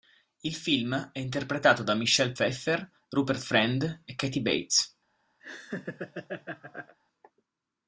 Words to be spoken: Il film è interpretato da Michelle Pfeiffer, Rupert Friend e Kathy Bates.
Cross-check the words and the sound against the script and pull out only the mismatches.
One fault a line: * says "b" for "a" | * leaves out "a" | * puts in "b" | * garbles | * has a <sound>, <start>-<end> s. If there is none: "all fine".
* has a laugh, 5.4-7.0 s